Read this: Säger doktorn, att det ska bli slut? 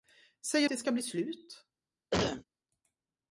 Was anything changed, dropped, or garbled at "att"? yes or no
yes